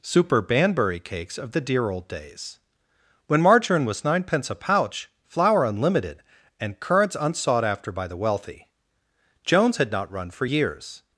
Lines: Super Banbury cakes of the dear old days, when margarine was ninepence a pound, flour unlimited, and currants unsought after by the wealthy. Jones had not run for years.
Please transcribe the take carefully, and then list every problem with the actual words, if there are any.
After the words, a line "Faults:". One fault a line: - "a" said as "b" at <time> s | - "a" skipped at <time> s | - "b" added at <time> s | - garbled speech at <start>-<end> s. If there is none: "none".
Super Banbury cakes of the dear old days, when margarine was ninepence a pouch, flour unlimited, and currants unsought after by the wealthy. Jones had not run for years.
Faults:
- "pound" said as "pouch" at 4.5 s